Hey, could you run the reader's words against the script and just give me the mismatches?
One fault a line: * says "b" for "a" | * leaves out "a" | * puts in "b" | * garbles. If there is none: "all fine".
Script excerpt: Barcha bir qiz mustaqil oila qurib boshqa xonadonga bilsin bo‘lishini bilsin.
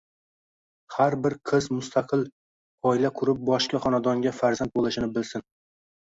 * says "Har" for "Barcha"
* says "farzand" for "bilsin"